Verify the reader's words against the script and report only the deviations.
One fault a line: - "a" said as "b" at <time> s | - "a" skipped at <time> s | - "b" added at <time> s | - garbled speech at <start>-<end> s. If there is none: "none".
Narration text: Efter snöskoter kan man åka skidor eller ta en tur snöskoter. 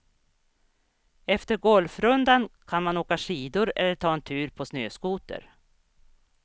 - "snöskoter" said as "golfrundan" at 1.6 s
- "på" added at 4.5 s